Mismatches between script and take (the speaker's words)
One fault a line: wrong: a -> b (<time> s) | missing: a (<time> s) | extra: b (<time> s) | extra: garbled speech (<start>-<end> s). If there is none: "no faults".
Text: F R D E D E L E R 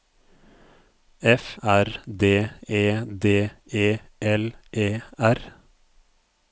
no faults